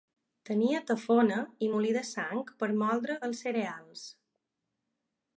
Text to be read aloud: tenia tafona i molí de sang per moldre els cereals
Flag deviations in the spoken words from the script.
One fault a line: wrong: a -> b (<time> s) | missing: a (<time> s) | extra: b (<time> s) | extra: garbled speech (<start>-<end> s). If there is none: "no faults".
no faults